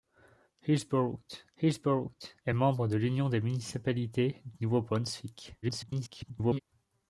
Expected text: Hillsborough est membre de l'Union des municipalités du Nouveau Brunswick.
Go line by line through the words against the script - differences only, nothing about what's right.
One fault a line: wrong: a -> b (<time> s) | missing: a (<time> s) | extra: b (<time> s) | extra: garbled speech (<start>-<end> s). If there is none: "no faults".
extra: hillsborough (1.6 s)
extra: garbled speech (5.6-6.6 s)